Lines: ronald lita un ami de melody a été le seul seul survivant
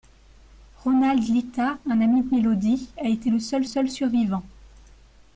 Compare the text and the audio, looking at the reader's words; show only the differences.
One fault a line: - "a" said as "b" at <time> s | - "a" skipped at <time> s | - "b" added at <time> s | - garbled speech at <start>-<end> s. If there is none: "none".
none